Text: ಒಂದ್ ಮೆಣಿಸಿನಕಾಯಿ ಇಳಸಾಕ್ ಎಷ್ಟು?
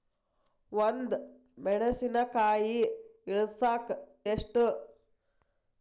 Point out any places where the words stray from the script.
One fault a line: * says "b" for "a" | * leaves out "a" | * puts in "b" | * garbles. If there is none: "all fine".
all fine